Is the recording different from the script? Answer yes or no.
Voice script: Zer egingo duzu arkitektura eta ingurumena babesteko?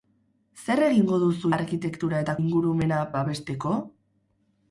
no